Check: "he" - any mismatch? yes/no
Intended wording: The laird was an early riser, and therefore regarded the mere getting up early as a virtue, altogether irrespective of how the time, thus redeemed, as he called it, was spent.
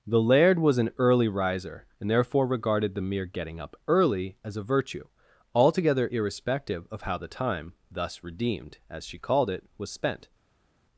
yes